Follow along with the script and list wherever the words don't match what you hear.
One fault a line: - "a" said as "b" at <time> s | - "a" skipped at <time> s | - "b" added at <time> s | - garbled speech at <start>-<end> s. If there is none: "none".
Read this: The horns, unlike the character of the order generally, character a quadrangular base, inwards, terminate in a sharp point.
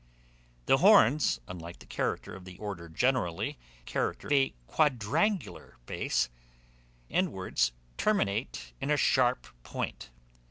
none